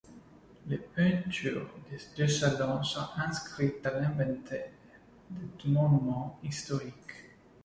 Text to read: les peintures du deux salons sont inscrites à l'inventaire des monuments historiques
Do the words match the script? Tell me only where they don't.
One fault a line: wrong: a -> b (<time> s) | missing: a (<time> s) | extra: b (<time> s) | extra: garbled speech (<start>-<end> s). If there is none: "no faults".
wrong: du -> des (1.9 s)